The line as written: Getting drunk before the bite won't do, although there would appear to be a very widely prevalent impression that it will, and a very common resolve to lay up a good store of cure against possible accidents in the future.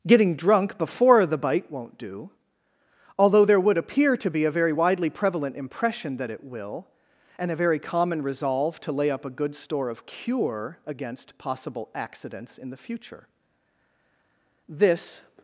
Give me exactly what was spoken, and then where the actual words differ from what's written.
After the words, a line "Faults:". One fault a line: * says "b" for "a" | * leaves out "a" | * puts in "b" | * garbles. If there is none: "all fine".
Getting drunk before the bite won't do, although there would appear to be a very widely prevalent impression that it will, and a very common resolve to lay up a good store of cure against possible accidents in the future. This
Faults:
* puts in "This"